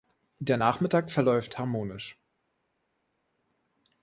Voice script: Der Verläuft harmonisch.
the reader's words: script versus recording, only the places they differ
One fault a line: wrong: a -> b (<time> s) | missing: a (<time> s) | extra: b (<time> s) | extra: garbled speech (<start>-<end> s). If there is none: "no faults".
extra: Nachmittag (0.6 s)